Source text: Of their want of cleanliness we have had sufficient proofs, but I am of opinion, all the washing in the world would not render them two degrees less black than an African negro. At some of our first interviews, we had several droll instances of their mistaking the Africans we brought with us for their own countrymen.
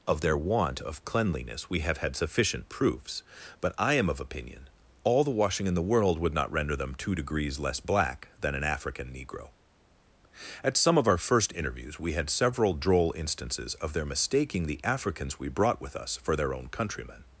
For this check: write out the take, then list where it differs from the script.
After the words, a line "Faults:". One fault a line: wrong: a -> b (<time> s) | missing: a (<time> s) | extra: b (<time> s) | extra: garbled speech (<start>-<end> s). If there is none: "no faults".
Of their want of cleanliness we have had sufficient proofs, but I am of opinion, all the washing in the world would not render them two degrees less black than an African negro. At some of our first interviews, we had several droll instances of their mistaking the Africans we brought with us for their own countrymen.
Faults:
no faults